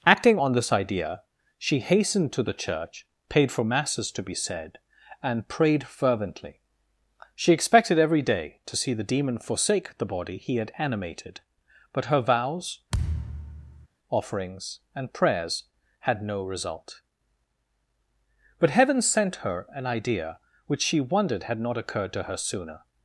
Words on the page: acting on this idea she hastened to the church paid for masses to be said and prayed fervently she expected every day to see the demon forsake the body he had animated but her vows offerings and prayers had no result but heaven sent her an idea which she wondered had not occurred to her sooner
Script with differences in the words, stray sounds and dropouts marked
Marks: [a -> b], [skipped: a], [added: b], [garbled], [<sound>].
acting on this idea she hastened to the church paid for masses to be said and prayed fervently she expected every day to see the demon forsake the body he had animated but her vows [thud] offerings and prayers had no result but heaven sent her an idea which she wondered had not occurred to her sooner